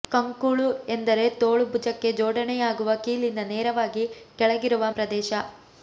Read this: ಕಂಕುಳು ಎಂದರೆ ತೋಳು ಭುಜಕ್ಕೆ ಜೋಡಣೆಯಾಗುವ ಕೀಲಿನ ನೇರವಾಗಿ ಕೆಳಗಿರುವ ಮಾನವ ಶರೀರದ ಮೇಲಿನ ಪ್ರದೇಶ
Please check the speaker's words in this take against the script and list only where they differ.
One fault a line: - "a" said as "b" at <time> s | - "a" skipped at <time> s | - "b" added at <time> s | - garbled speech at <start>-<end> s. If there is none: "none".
- "ಮಾನವ ಶರೀರದ ಮೇಲಿನ" skipped at 4.8 s